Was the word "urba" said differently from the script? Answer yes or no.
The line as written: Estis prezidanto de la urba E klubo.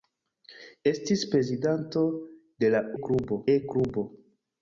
yes